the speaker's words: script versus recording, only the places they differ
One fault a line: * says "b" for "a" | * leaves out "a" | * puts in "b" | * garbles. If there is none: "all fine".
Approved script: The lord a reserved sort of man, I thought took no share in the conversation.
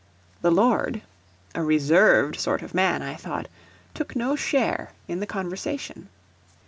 all fine